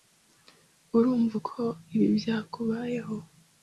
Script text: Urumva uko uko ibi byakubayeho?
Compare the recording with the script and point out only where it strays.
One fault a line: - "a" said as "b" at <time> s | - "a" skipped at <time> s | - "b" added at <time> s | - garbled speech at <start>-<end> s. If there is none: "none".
- "uko" skipped at 1.6 s